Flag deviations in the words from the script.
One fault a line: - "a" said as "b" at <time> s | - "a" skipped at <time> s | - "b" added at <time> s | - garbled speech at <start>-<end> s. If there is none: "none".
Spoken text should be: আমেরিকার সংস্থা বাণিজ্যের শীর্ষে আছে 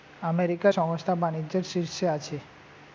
none